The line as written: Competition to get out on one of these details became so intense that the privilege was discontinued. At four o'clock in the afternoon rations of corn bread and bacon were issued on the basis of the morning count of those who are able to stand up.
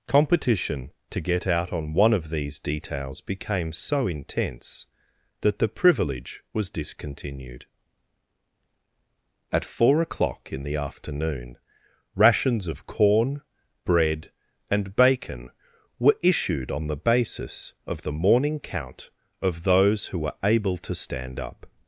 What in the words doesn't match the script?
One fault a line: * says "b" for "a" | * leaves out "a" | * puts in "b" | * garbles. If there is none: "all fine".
* says "were" for "are"